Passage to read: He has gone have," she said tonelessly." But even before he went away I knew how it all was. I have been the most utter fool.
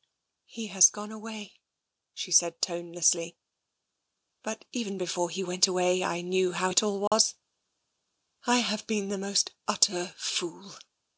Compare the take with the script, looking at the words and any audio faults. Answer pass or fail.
fail